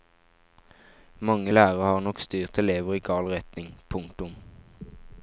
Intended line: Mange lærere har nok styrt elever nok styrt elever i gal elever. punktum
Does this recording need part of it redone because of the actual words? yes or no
yes